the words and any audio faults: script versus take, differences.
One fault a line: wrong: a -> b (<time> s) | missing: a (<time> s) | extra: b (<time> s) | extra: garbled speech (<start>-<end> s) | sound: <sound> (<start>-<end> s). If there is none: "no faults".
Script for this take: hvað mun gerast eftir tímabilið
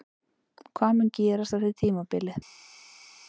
no faults